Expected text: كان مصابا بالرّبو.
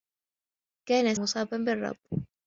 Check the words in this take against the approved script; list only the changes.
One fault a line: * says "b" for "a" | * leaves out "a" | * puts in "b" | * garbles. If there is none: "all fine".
all fine